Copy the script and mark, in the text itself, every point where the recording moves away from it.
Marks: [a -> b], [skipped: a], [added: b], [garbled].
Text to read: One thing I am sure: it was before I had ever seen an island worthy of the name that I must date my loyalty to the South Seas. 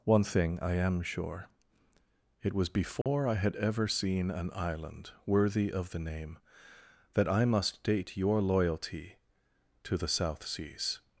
One thing I am sure: it was before I had ever seen an island worthy of the name that I must date [my -> your] loyalty to the South Seas.